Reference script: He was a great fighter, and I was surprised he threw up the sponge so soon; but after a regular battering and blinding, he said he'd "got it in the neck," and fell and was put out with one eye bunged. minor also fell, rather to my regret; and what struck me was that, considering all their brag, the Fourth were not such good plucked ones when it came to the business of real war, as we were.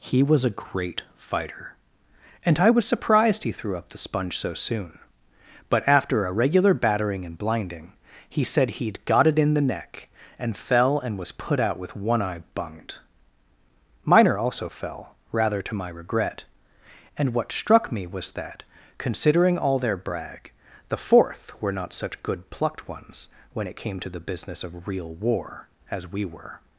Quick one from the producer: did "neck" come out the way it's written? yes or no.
yes